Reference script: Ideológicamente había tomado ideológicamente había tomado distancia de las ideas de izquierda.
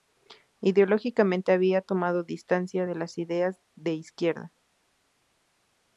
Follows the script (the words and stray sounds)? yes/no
no